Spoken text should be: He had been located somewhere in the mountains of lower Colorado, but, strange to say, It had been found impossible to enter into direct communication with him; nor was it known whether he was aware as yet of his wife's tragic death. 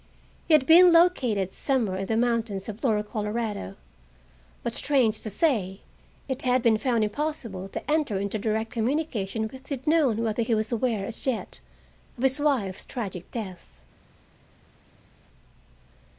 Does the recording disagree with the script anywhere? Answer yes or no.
yes